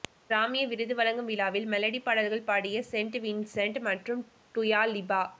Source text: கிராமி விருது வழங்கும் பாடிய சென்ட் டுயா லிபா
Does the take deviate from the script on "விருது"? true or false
false